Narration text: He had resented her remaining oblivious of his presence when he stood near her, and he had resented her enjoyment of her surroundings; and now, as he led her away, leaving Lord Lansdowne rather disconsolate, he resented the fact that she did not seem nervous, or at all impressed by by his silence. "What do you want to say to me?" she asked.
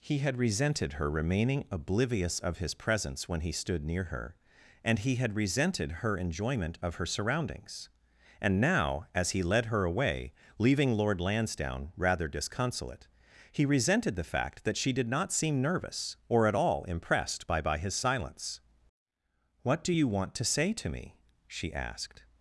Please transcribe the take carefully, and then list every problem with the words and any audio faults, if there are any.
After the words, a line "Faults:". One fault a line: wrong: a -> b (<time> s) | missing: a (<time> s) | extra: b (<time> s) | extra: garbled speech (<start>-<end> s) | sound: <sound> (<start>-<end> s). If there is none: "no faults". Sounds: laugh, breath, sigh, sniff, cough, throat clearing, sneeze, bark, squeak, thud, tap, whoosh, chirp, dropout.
He had resented her remaining oblivious of his presence when he stood near her, and he had resented her enjoyment of her surroundings; and now, as he led her away, leaving Lord Lansdowne rather disconsolate, he resented the fact that she did not seem nervous, or at all impressed by by his silence. "What do you want to say to me?" she asked.
Faults:
no faults